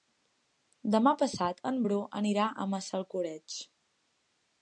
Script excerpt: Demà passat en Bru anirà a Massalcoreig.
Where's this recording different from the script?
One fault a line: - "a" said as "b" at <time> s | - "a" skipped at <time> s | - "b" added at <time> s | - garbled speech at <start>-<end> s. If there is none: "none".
none